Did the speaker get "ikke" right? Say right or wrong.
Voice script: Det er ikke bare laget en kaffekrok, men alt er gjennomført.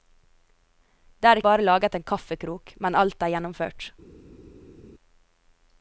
wrong